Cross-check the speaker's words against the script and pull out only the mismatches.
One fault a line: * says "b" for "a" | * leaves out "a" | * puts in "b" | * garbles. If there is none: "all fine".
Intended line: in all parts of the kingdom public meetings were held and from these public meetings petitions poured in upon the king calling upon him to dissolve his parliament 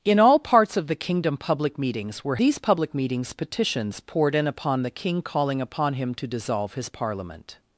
* leaves out "held and from"